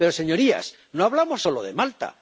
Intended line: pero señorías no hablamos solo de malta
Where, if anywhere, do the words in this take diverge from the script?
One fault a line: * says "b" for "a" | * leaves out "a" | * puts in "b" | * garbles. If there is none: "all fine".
all fine